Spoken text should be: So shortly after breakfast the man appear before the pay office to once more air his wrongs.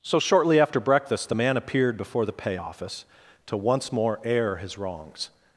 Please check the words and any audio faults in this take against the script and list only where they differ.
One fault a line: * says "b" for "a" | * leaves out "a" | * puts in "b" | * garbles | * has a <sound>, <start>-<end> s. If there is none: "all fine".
* says "appeared" for "appear"